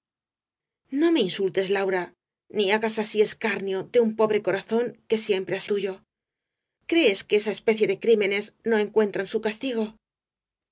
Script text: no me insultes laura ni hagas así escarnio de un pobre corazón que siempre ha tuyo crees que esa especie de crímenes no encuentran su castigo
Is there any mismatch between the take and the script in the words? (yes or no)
no